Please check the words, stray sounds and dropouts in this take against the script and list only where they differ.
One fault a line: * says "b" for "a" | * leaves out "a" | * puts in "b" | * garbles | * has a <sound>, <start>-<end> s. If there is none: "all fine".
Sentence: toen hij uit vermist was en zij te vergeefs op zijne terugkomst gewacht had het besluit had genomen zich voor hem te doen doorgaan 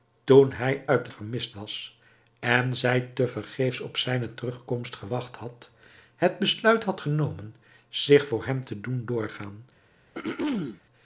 * has a throat clearing, 10.1-10.8 s